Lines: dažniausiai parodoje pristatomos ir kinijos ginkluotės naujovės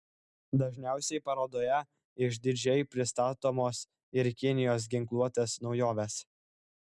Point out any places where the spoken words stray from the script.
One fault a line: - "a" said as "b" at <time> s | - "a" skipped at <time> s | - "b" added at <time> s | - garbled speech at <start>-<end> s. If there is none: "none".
- "išdidžiai" added at 2.3 s